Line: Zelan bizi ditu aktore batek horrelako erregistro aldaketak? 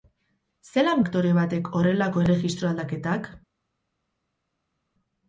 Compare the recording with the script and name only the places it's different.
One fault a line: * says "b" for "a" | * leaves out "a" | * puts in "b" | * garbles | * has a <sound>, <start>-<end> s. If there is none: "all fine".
* leaves out "bizi ditu"